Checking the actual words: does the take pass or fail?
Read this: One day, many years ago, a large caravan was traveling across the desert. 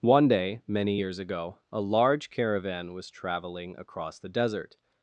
pass